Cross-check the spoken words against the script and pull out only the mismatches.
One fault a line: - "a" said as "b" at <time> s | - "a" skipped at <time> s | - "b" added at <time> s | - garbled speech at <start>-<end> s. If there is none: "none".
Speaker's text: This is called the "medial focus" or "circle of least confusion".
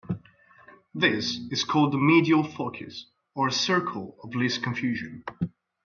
none